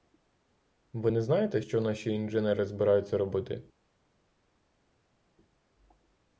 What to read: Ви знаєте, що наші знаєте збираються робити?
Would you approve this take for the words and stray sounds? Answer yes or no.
no